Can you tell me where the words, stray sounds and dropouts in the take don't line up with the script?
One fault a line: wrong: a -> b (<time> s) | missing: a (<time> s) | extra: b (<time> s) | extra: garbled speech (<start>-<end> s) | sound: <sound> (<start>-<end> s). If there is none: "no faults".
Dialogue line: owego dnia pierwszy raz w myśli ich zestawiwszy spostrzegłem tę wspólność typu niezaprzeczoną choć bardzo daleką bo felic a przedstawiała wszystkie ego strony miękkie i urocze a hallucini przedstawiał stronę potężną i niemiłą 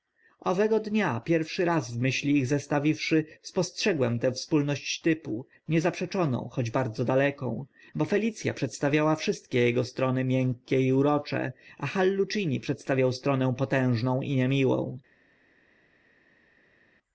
no faults